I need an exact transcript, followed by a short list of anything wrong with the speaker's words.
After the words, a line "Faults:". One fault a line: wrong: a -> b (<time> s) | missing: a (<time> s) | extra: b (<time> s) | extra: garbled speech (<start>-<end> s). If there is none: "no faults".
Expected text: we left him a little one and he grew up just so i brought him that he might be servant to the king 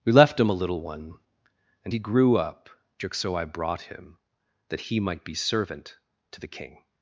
we left him a little one and he grew up just so i brought him that he might be servant to the king
Faults:
no faults